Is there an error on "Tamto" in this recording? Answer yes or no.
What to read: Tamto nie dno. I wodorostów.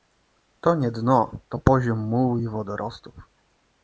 yes